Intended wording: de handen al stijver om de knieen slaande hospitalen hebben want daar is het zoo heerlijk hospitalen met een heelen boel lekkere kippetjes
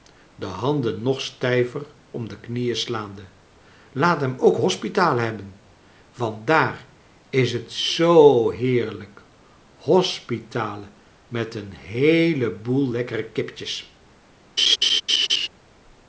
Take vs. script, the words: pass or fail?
fail